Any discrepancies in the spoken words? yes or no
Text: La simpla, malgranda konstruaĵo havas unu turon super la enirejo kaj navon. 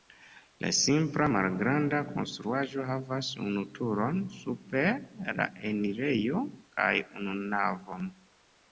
yes